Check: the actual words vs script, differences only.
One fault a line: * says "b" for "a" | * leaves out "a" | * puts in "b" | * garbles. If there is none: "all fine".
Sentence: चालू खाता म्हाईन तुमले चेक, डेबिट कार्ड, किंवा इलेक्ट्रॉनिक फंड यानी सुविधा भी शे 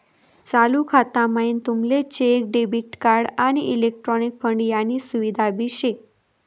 * says "आणि" for "किंवा"